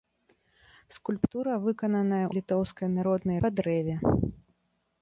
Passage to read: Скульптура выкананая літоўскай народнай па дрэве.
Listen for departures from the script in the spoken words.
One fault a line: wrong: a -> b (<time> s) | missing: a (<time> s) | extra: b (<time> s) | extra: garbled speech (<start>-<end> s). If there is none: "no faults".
no faults